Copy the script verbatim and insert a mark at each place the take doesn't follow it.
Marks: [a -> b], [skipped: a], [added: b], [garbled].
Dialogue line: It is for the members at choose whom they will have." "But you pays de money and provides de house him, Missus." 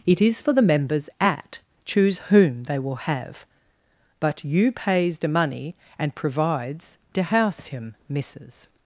It is for the members at choose whom they will have." "But you pays de money and provides de house him, Missus."